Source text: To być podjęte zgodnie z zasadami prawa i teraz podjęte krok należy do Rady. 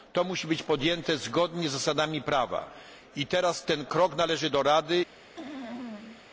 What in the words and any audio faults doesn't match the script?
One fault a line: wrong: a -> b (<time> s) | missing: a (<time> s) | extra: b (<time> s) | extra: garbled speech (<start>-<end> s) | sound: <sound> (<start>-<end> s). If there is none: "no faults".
extra: musi (0.2 s)
wrong: podjęte -> ten (3.6 s)
sound: throat clearing (5.4-6.2 s)